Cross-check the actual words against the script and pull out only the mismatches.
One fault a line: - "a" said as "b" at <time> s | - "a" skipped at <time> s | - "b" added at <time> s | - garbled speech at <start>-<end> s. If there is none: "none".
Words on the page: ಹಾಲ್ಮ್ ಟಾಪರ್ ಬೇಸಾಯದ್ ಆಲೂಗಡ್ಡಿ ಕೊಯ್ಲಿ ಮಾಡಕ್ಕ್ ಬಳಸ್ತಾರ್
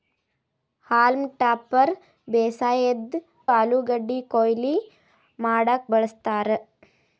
none